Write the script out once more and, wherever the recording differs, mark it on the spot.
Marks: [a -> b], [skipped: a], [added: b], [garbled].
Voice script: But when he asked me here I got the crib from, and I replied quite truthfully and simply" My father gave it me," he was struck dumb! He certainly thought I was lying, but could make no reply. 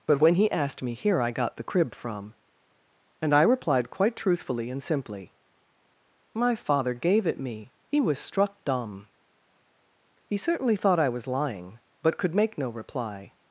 But when he asked me here I got the crib from, and I replied quite truthfully and simply" My father gave it me," he was struck dumb! He certainly thought I was lying, but could make no reply.